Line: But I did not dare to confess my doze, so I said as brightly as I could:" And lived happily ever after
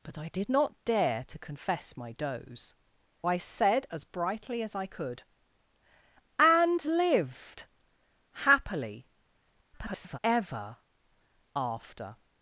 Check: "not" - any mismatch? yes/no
no